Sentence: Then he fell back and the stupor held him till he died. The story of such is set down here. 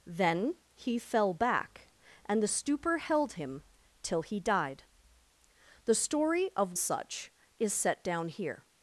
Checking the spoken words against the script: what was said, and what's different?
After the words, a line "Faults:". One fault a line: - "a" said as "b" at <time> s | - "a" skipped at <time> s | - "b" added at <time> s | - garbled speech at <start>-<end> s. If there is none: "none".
Then he fell back and the stupor held him till he died. The story of such is set down here.
Faults:
none